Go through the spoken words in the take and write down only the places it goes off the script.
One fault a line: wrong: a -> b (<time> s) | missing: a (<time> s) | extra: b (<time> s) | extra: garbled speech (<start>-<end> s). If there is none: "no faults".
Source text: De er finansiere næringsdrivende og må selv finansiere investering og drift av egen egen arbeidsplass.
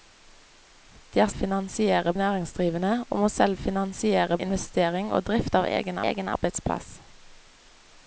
no faults